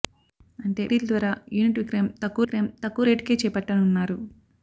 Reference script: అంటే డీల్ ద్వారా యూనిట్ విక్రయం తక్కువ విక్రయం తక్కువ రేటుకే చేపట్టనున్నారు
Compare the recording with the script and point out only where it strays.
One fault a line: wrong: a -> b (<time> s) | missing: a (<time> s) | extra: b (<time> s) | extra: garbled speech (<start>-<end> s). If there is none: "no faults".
no faults